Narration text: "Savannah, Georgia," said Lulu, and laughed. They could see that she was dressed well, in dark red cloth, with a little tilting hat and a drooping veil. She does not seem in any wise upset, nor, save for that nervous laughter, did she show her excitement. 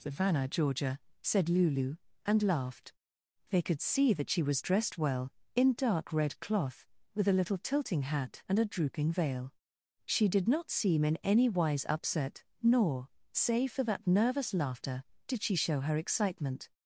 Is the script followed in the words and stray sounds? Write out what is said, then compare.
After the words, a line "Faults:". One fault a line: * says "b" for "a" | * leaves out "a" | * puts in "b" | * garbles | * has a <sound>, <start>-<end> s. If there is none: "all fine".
"Savannah, Georgia," said Lulu, and laughed. They could see that she was dressed well, in dark red cloth, with a little tilting hat and a drooping veil. She did not seem in any wise upset, nor, save for that nervous laughter, did she show her excitement.
Faults:
* says "did" for "does"